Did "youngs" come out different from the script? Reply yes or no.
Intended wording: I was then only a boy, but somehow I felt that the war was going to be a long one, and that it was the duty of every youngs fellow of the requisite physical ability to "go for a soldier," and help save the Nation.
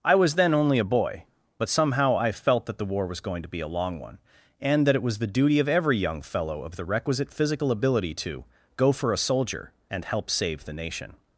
yes